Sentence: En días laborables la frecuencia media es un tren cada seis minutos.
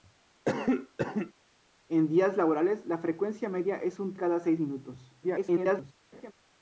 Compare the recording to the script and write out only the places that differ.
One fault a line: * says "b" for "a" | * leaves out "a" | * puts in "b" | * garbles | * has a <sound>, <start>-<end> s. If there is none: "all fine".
* has a cough, 0.4-1.3 s
* leaves out "tren"
* garbles
* has a laugh, 6.1-6.3 s